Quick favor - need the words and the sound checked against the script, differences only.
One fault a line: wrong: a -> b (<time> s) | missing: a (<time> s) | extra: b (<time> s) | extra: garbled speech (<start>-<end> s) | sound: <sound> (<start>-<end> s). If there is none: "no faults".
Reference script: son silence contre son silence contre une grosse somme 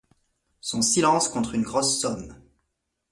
missing: son silence contre (1.5 s)